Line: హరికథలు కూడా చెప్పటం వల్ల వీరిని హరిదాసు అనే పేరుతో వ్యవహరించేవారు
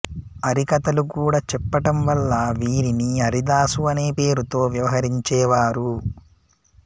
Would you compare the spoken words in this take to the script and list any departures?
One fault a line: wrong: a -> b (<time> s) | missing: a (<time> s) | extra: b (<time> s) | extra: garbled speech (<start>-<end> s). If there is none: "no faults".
no faults